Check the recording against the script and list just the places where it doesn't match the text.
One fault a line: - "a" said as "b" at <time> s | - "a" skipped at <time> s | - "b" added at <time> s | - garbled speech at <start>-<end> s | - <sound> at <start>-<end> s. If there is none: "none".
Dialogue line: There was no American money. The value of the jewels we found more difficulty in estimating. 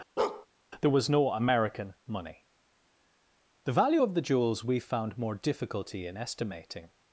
- bark at 0.2-0.5 s